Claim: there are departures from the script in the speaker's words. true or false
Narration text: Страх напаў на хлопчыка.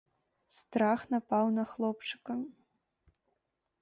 false